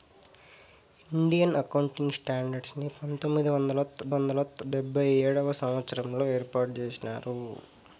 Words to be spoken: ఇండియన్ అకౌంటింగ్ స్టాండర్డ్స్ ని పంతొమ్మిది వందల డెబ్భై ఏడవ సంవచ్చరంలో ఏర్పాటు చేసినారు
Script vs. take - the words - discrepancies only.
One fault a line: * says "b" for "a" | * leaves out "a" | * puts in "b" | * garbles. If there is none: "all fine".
* puts in "వందల"